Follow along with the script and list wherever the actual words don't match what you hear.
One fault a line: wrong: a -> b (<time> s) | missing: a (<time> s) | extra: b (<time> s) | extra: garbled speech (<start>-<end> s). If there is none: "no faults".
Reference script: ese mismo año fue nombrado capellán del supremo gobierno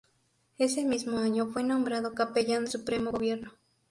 missing: del (2.6 s)